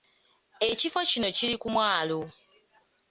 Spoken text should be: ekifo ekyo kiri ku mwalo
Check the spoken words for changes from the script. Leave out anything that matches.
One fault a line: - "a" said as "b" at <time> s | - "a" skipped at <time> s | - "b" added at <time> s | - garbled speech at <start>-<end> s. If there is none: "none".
- "ekyo" said as "kino" at 1.1 s